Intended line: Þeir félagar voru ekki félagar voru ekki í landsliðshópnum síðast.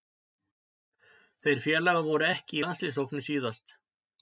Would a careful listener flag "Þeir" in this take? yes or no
no